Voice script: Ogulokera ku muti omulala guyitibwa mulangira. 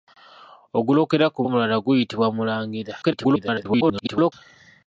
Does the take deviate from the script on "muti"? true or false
true